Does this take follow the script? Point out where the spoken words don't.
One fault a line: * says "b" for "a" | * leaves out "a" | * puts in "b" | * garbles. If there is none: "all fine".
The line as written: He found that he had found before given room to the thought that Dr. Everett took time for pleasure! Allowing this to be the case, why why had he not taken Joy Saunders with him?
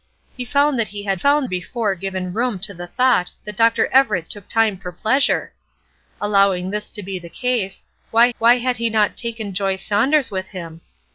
all fine